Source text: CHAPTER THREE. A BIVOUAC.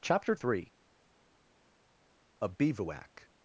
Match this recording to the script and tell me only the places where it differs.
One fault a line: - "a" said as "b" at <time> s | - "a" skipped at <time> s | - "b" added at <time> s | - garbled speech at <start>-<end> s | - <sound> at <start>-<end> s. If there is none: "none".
none